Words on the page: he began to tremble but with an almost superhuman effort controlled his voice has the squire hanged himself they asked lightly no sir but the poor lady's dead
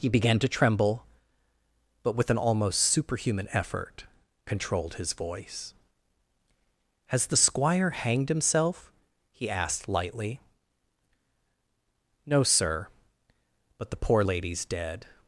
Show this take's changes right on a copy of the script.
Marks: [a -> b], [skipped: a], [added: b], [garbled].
he began to tremble but with an almost superhuman effort controlled his voice has the squire hanged himself [they -> he] asked lightly no sir but the poor lady's dead